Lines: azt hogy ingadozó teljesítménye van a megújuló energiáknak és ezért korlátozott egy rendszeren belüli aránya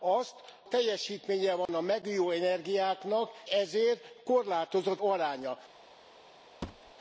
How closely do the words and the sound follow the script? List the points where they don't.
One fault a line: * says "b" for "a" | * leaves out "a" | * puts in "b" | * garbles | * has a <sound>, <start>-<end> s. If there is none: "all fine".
* leaves out "hogy ingadozó"
* has a dropout, 1.7-1.7 s
* leaves out "és"
* leaves out "egy rendszeren belüli"
* has a thud, 6.6-6.9 s